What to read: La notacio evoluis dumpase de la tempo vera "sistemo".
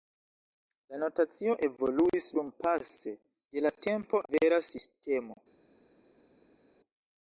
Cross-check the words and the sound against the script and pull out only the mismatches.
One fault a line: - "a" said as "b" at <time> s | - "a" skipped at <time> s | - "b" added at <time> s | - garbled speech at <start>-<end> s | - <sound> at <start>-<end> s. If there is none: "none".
none